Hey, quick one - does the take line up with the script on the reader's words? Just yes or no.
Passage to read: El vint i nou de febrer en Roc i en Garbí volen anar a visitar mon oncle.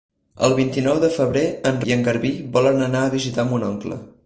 no